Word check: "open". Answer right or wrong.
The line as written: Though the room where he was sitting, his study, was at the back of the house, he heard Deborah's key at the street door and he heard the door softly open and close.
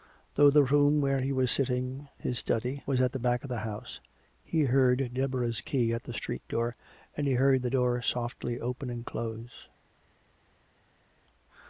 right